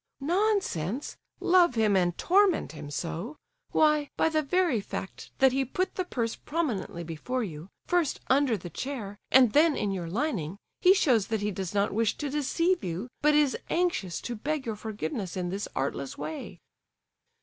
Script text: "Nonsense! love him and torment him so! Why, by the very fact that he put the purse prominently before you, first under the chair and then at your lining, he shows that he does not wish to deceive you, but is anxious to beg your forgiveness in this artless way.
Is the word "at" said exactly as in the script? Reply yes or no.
no